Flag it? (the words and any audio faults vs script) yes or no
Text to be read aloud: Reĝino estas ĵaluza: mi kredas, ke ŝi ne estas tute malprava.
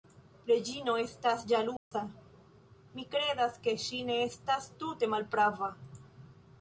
yes